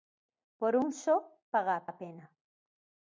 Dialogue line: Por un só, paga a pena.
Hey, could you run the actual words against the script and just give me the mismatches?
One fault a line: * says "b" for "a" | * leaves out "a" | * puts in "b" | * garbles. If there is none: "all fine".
* puts in "a"